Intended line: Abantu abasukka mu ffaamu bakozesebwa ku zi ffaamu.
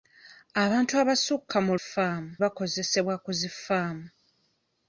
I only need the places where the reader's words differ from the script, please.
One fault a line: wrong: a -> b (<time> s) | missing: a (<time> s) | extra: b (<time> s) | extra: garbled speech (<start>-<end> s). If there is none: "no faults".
no faults